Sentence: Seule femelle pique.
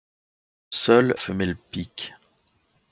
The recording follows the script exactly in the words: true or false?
true